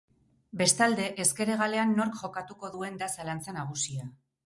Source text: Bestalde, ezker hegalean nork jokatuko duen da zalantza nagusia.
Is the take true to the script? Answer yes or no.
yes